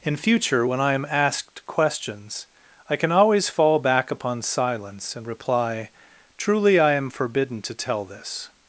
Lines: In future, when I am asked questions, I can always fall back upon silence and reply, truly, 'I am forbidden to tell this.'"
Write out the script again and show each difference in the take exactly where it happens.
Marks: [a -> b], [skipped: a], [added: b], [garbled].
In future, when I am asked questions, I can always fall back upon silence and reply, truly, 'I am forbidden to tell this.'"